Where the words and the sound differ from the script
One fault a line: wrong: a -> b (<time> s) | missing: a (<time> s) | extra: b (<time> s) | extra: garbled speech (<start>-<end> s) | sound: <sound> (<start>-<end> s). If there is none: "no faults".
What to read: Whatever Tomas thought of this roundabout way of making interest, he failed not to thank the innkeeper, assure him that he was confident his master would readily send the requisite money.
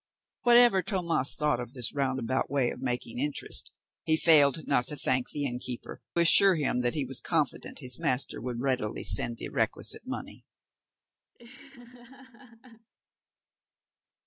sound: laugh (11.3-12.9 s)